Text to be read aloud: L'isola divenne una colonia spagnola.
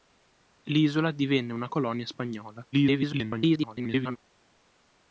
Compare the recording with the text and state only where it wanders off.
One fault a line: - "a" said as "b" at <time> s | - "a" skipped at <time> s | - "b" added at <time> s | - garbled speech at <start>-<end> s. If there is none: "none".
- garbled speech at 2.7-4.2 s